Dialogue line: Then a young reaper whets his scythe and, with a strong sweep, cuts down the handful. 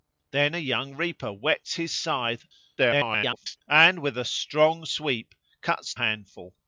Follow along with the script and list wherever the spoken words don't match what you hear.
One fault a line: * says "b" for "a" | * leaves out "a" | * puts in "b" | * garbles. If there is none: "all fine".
* garbles
* leaves out "down the"